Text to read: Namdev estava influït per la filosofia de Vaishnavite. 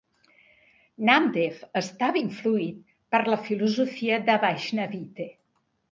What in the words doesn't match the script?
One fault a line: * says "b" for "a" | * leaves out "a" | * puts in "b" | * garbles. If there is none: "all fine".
all fine